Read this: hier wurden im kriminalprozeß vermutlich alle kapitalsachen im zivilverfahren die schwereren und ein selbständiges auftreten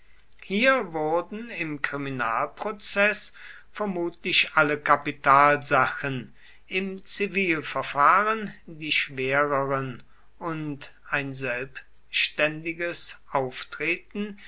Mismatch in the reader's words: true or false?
false